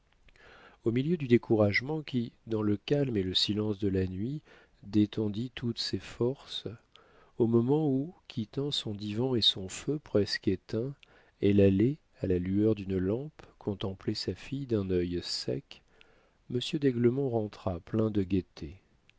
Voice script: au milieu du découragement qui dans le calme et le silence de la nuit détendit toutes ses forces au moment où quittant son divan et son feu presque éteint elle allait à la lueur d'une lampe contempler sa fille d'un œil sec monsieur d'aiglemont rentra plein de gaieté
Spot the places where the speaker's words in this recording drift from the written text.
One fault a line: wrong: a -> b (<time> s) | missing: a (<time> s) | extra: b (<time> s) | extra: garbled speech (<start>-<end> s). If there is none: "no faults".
no faults